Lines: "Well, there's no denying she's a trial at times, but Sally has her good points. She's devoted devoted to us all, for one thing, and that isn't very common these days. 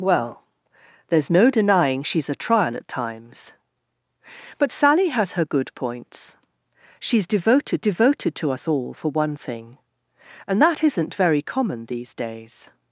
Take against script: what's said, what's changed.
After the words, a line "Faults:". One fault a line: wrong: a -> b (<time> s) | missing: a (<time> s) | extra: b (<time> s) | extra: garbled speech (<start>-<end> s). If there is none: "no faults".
"Well, there's no denying she's a trial at times, but Sally has her good points. She's devoted devoted to us all, for one thing, and that isn't very common these days.
Faults:
no faults